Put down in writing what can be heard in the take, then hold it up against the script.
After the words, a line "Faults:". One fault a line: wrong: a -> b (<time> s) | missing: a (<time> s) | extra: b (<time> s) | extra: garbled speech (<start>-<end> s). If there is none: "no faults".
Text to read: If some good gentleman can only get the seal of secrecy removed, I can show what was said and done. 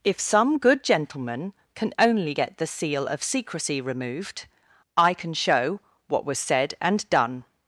If some good gentleman can only get the seal of secrecy removed, I can show what was said and done.
Faults:
no faults